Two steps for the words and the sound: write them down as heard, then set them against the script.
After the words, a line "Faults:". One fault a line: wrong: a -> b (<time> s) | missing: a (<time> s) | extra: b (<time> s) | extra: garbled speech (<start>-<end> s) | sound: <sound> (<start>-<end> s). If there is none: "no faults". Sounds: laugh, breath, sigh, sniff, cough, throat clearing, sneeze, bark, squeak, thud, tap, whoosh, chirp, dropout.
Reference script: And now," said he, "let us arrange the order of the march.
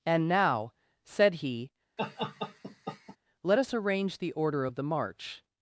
And now," said he, "let us arrange the order of the march.
Faults:
sound: laugh (2.0-3.2 s)